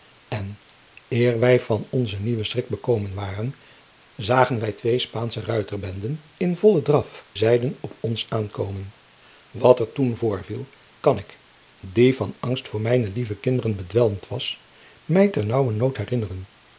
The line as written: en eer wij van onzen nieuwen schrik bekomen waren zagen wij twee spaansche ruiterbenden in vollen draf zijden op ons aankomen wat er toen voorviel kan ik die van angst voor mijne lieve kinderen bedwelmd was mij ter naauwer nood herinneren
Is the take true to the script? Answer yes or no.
yes